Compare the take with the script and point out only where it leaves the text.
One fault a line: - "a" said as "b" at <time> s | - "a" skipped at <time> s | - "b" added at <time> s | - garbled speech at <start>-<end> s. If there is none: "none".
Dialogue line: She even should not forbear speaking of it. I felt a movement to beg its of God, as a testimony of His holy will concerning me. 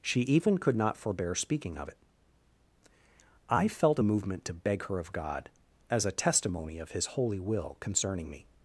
- "should" said as "could" at 0.6 s
- "its" said as "her" at 4.9 s